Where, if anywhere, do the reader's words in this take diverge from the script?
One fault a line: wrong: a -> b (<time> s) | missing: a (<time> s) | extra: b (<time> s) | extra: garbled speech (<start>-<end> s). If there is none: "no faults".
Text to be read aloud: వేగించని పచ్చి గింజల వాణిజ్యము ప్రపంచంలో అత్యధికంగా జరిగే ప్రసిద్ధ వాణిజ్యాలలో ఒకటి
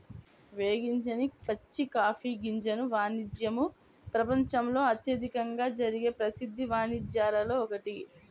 extra: కాఫీ (1.9 s)